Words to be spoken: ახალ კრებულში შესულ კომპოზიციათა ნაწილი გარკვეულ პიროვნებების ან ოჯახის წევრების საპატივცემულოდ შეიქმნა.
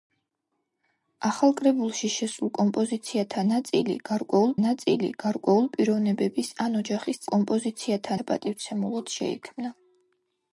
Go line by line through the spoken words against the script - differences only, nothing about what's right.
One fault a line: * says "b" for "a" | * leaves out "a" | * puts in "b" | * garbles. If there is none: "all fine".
* puts in "ნაწილი გარკვეულ"
* says "კომპოზიციათა" for "წევრების"